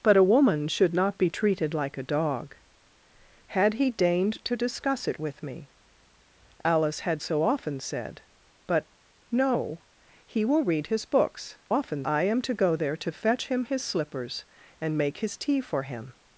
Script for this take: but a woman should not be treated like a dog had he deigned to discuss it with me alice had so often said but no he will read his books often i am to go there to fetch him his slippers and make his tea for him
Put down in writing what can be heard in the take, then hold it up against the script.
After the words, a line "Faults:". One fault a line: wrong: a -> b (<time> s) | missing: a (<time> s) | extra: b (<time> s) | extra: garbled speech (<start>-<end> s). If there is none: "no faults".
but a woman should not be treated like a dog had he deigned to discuss it with me alice had so often said but no he will read his books often i am to go there to fetch him his slippers and make his tea for him
Faults:
no faults